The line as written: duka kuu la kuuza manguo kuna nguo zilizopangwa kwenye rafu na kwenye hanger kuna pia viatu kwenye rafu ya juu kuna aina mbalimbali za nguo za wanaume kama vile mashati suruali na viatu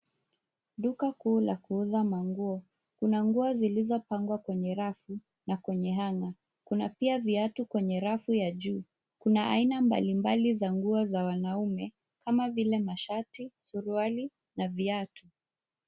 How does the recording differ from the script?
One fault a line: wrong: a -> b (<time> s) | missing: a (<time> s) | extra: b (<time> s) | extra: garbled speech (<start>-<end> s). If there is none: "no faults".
no faults